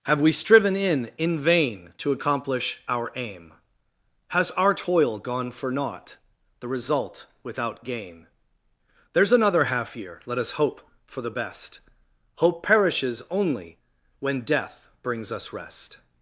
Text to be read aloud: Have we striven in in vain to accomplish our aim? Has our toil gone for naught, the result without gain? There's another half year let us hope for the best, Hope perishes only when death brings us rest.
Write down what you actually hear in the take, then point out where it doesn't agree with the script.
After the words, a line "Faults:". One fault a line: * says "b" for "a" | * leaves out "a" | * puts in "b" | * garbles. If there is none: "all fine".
Have we striven in in vain to accomplish our aim? Has our toil gone for naught, the result without gain? There's another half year let us hope for the best, Hope perishes only when death brings us rest.
Faults:
all fine